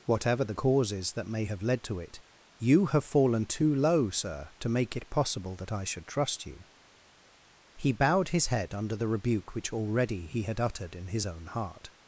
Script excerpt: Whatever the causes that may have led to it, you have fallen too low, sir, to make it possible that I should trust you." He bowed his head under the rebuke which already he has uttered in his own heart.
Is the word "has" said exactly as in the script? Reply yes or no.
no